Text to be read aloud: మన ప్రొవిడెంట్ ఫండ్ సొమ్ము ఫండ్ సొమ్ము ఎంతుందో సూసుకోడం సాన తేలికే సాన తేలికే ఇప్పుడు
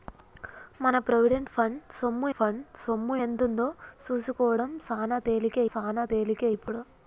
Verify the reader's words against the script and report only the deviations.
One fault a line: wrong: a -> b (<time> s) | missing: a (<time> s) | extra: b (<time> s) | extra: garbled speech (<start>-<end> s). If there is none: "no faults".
no faults